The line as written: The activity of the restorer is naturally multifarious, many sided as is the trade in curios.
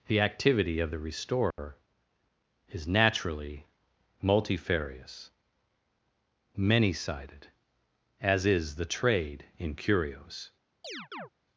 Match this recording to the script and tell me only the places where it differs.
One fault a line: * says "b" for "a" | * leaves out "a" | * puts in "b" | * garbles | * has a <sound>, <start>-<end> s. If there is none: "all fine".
* has a dropout, 1.5-1.6 s
* has a chirp, 10.8-11.3 s